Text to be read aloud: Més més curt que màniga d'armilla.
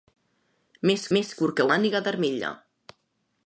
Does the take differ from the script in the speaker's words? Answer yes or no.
no